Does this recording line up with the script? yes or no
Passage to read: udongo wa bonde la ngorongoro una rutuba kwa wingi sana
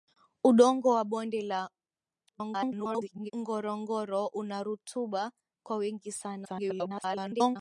no